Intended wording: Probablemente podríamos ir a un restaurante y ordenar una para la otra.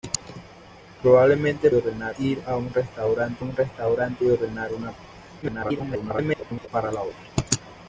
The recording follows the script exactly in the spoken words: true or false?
false